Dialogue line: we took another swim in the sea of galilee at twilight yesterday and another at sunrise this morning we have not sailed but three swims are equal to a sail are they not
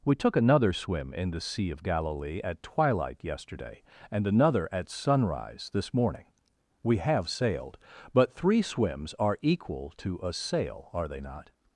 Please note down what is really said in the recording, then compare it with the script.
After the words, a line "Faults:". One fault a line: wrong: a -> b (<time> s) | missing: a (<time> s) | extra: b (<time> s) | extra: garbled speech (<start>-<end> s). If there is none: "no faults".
we took another swim in the sea of galilee at twilight yesterday and another at sunrise this morning we have sailed but three swims are equal to a sail are they not
Faults:
missing: not (7.3 s)